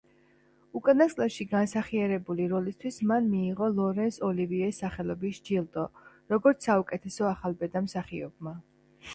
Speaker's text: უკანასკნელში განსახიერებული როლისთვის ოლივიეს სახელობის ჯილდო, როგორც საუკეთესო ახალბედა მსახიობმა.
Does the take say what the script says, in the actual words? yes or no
no